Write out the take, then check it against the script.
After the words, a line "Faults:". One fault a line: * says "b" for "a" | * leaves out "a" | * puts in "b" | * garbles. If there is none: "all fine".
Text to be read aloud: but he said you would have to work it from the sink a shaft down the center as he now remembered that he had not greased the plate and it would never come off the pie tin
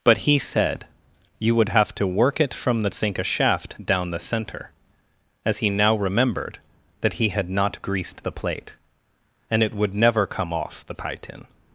but he said you would have to work it from the sink a shaft down the center as he now remembered that he had not greased the plate and it would never come off the pie tin
Faults:
all fine